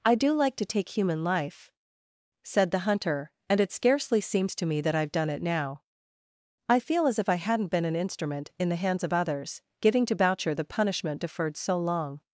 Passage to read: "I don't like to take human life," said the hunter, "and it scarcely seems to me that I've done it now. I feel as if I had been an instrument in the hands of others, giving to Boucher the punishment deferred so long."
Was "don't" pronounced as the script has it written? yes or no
no